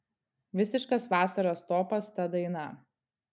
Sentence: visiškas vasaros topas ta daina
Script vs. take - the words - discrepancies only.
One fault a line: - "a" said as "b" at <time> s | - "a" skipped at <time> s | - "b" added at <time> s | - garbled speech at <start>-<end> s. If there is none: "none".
none